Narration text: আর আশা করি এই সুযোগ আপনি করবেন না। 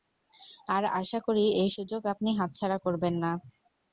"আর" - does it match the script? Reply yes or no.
yes